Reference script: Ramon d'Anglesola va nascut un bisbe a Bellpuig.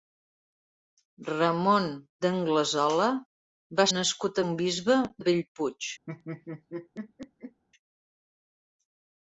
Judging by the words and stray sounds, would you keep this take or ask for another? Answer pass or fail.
fail